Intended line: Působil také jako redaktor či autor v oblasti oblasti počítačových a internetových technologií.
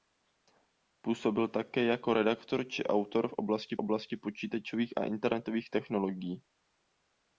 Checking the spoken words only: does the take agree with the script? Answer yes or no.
yes